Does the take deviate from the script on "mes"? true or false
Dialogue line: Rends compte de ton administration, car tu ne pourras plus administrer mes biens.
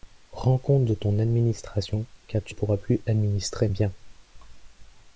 true